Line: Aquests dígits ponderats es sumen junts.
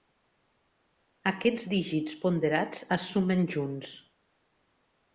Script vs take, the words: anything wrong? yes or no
no